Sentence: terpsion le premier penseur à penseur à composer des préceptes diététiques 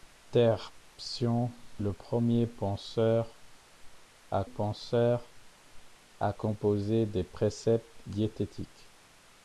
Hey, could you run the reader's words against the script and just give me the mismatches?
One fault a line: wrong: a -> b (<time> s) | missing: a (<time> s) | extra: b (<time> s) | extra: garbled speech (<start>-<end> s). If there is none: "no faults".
no faults